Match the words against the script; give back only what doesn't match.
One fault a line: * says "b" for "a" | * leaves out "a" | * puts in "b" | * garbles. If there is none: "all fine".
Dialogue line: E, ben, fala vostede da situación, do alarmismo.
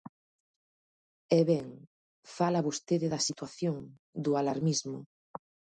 all fine